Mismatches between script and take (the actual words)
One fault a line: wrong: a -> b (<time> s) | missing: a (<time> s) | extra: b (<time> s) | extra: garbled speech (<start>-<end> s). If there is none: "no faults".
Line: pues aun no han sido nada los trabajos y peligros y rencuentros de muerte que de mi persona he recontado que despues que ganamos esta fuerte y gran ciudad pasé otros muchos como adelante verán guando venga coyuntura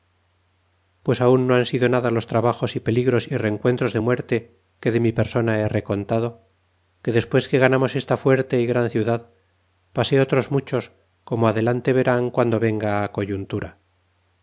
no faults